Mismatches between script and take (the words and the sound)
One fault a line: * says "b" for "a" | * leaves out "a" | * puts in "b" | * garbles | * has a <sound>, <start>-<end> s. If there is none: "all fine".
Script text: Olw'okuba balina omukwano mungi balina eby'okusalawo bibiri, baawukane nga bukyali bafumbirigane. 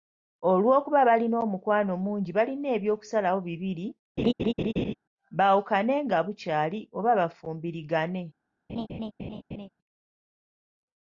* has a laugh, 4.2-4.9 s
* puts in "oba"
* has a laugh, 8.7-9.7 s